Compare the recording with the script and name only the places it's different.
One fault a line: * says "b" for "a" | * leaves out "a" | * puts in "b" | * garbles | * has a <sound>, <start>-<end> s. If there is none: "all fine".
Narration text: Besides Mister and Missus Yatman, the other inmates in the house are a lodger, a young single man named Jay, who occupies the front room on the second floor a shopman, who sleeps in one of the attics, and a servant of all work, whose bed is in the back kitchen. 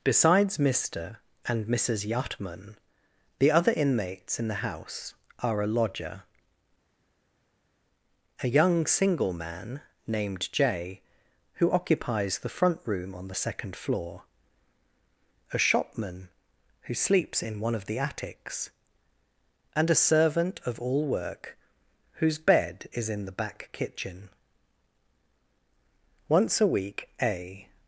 * puts in "Once a week a"